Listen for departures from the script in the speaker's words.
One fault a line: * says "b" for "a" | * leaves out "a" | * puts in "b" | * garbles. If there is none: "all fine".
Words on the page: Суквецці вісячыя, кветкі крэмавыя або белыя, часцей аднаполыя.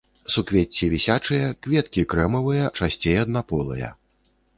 * leaves out "або белыя"